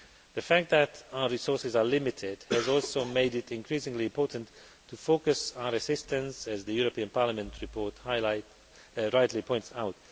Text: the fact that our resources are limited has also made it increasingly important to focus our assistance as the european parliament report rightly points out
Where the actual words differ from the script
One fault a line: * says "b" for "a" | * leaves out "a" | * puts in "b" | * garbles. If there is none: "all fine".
all fine